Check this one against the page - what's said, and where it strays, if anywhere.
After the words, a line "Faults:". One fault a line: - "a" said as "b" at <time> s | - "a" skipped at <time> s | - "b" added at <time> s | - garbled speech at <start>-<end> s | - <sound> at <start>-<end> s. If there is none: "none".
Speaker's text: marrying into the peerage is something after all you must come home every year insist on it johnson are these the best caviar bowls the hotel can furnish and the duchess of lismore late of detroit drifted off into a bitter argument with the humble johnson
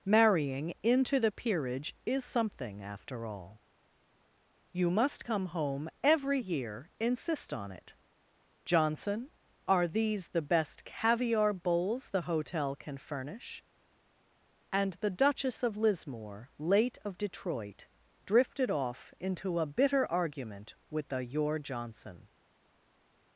marrying into the peerage is something after all you must come home every year insist on it johnson are these the best caviar bowls the hotel can furnish and the duchess of lismore late of detroit drifted off into a bitter argument with the your johnson
Faults:
- "humble" said as "your" at 21.2 s